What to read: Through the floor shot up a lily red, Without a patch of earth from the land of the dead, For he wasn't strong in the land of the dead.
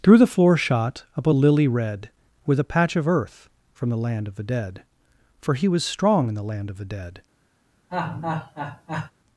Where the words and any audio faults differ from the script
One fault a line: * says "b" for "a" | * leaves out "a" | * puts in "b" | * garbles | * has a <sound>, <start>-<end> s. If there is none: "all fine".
* says "With" for "Without"
* says "was" for "wasn't"
* has a laugh, 7.9-9.1 s